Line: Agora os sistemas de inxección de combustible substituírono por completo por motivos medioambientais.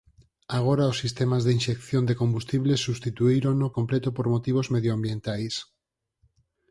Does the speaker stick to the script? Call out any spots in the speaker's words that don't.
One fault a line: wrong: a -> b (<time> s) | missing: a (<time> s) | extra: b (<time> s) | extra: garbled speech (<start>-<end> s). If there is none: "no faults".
missing: por (3.6 s)